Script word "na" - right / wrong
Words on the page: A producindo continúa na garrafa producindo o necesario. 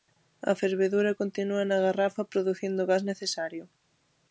right